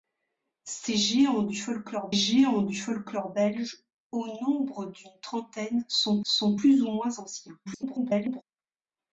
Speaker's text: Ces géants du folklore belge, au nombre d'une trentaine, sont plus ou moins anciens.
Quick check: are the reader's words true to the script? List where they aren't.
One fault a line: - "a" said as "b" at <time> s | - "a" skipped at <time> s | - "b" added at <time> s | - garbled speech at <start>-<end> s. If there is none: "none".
- "géants du folklore" added at 2.1 s
- "sont" added at 6.2 s
- garbled speech at 7.7-8.4 s